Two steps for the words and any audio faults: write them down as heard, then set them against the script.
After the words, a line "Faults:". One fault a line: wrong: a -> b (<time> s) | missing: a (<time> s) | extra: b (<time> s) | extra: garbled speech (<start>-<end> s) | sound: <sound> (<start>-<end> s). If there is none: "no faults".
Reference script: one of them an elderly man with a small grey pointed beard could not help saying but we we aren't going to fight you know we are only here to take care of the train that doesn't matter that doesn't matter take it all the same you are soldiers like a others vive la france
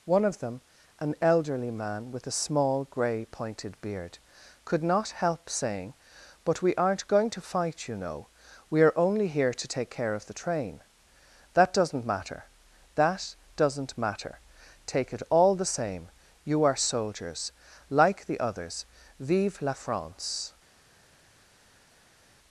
one of them an elderly man with a small grey pointed beard could not help saying but we aren't going to fight you know we are only here to take care of the train that doesn't matter that doesn't matter take it all the same you are soldiers like the others vive la france
Faults:
missing: we (6.7 s)
wrong: a -> the (18.3 s)